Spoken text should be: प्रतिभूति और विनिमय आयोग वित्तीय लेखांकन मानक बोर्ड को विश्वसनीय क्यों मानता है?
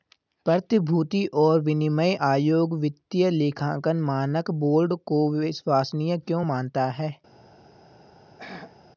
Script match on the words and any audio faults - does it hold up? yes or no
no